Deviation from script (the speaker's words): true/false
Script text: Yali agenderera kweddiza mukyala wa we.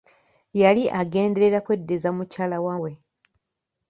false